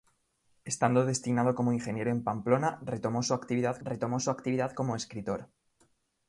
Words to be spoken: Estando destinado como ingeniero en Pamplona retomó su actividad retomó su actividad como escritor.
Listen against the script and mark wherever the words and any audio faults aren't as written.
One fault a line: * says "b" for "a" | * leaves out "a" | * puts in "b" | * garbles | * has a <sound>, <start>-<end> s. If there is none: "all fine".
all fine